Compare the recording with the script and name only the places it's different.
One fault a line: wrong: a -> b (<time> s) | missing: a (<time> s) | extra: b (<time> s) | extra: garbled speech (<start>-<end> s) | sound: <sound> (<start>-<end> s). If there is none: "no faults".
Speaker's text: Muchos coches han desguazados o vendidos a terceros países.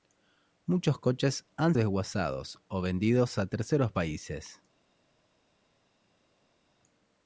no faults